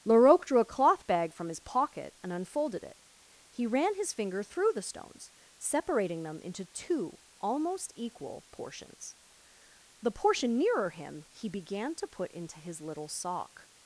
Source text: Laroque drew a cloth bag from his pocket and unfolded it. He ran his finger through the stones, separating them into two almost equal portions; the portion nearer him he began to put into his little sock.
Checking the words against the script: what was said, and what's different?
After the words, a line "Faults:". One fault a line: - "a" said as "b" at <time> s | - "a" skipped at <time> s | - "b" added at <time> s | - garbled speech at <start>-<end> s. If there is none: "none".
Laroque drew a cloth bag from his pocket and unfolded it. He ran his finger through the stones, separating them into two almost equal portions; the portion nearer him he began to put into his little sock.
Faults:
none